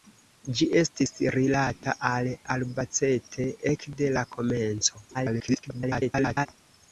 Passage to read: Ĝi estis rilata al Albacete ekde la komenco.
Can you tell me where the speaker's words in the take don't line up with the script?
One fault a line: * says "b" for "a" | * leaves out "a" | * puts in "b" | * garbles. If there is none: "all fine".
* garbles